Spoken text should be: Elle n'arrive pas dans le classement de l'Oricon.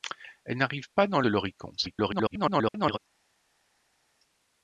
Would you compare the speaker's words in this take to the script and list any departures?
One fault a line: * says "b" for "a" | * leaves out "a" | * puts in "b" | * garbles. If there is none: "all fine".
* leaves out "le classement"
* garbles